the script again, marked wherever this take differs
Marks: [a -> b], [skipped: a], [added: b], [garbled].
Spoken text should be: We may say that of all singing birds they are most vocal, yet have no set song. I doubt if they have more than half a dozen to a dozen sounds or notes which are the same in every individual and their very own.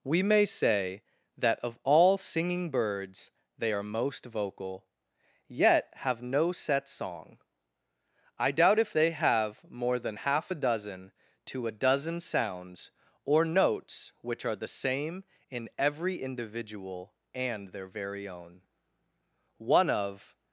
We may say that of all singing birds they are most vocal, yet have no set song. I doubt if they have more than half a dozen to a dozen sounds or notes which are the same in every individual and their very own. [added: One of]